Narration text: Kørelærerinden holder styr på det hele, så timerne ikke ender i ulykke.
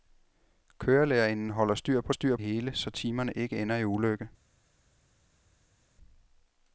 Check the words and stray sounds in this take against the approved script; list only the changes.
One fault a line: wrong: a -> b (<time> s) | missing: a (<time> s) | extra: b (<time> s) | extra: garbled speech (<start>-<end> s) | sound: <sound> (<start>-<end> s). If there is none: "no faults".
wrong: det -> styr (2.1 s)